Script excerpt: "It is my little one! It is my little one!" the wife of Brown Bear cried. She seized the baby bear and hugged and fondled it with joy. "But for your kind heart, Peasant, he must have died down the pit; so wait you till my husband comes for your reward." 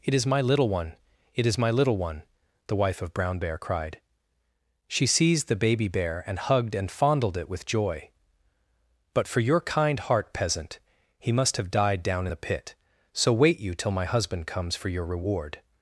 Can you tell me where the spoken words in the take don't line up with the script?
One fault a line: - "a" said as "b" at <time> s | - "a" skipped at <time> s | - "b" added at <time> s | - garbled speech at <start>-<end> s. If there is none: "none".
none